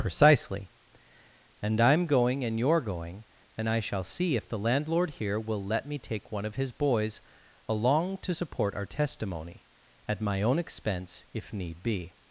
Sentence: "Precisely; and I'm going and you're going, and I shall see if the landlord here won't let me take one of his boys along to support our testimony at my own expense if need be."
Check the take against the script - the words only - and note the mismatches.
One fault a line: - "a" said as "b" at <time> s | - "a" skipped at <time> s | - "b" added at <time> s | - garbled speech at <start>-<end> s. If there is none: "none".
- "won't" said as "will" at 5.4 s